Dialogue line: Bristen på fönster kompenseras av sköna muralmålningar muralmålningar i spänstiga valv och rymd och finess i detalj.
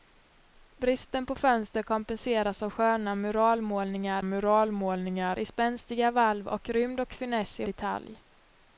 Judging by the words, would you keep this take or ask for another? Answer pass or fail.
pass